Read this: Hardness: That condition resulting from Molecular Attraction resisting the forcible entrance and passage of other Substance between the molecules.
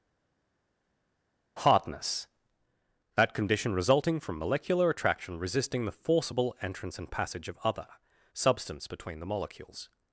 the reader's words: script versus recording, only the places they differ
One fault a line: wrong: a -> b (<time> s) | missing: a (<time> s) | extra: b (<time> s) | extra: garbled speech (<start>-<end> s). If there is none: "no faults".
no faults